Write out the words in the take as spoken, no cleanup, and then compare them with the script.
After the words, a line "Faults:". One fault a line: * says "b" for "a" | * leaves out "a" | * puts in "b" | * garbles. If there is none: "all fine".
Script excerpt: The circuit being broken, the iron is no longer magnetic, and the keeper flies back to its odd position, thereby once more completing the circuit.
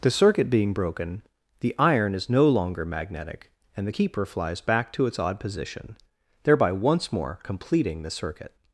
The circuit being broken, the iron is no longer magnetic, and the keeper flies back to its odd position, thereby once more completing the circuit.
Faults:
all fine